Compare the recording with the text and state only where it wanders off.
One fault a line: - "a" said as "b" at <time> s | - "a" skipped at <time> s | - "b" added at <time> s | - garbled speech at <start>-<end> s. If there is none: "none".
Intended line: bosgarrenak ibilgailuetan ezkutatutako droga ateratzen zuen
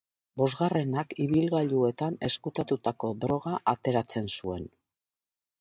none